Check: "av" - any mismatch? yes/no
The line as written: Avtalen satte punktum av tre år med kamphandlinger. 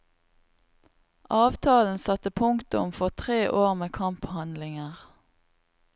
yes